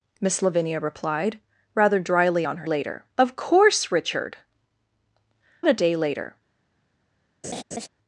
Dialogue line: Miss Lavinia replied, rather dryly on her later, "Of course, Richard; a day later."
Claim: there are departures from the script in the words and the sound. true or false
true